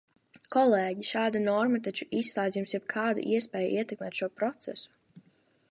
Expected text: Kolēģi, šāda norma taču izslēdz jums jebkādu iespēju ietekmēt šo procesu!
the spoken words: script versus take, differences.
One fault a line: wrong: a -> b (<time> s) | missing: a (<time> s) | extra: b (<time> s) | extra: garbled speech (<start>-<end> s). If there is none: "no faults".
no faults